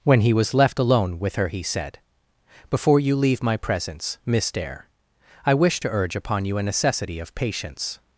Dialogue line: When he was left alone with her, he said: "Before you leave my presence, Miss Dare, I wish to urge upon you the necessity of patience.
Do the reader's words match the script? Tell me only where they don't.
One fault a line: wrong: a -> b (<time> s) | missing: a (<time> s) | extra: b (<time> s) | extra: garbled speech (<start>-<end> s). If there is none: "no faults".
wrong: the -> a (6.6 s)